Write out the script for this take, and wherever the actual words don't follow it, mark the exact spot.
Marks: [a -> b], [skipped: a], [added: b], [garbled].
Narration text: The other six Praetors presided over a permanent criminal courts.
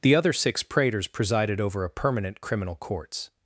The other six Praetors presided over a permanent criminal courts.